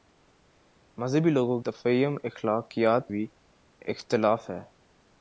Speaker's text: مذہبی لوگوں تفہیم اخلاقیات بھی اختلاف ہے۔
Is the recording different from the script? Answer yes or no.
no